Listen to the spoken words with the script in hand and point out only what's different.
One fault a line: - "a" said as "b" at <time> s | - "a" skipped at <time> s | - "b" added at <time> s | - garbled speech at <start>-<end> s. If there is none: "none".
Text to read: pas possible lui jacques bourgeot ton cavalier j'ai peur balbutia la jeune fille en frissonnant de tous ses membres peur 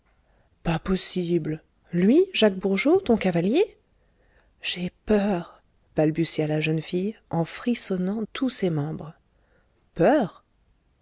- "de" skipped at 8.2 s